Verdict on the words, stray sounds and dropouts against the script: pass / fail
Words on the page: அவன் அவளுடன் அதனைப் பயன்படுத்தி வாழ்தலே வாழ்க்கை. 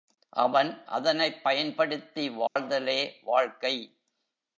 fail